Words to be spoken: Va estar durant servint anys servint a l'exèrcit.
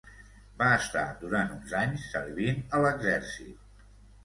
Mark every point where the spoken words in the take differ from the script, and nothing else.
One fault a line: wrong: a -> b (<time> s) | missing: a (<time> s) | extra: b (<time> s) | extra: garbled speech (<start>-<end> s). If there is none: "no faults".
wrong: servint -> uns (1.6 s)